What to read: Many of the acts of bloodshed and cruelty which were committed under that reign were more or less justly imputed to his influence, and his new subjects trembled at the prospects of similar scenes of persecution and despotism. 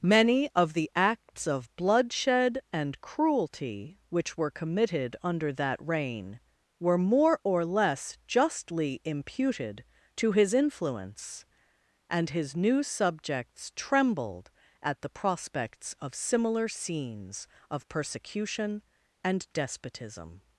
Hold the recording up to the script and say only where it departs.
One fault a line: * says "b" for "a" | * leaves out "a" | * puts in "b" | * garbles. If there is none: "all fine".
all fine